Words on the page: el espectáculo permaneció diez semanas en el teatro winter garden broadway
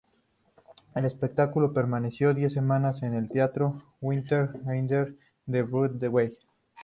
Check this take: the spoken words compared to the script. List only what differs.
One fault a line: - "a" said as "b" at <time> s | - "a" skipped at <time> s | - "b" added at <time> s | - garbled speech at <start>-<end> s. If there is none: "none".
- "de" added at 5.5 s